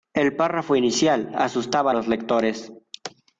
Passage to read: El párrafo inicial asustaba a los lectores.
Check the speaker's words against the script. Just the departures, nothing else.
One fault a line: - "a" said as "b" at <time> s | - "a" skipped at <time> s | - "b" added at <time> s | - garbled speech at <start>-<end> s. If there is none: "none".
none